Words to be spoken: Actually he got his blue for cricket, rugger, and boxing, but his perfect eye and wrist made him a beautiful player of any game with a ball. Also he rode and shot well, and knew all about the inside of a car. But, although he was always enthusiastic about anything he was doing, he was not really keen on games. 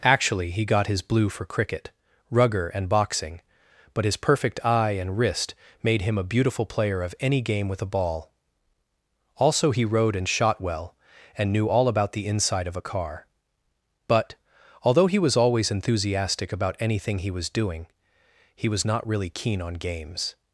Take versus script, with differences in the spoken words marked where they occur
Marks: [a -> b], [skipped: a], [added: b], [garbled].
Actually he got his blue for cricket, rugger, and boxing, but his perfect eye and wrist made him a beautiful player of any game with a ball. Also he rode and shot well, and knew all about the inside of a car. But, although he was always enthusiastic about anything he was doing, he was not really keen on games.